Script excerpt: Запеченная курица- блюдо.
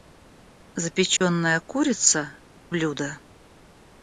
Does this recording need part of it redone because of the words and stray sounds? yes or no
yes